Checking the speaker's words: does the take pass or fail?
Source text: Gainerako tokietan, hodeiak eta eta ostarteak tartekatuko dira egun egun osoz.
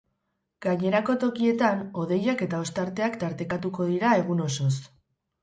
fail